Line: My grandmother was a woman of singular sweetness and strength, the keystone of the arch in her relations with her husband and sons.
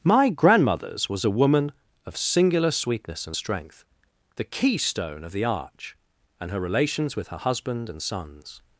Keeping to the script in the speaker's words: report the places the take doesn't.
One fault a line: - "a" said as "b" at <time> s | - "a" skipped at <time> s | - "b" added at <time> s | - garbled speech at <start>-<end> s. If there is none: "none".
- "grandmother" said as "grandmothers" at 0.3 s
- "in" said as "and" at 6.4 s